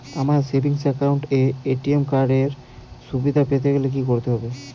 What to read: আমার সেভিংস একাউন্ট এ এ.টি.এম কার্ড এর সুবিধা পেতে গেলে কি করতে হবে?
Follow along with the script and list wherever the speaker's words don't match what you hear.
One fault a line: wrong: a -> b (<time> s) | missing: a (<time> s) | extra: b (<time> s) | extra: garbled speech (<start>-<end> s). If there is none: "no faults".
no faults